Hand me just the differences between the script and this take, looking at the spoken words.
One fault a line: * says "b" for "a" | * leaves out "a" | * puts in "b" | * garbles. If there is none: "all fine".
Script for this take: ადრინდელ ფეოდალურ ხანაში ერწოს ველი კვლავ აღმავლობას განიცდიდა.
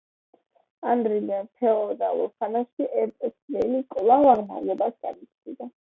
all fine